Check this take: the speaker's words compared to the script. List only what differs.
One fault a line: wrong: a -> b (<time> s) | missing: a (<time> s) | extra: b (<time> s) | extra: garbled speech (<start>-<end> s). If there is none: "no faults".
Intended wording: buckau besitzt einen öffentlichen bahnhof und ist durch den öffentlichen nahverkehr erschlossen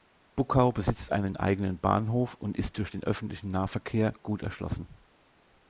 wrong: öffentlichen -> eigenen (1.4 s)
extra: gut (4.2 s)